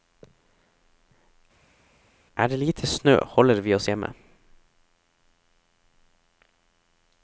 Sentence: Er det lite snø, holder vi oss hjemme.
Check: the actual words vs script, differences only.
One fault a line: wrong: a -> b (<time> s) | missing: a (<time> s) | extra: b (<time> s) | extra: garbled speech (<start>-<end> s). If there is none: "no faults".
no faults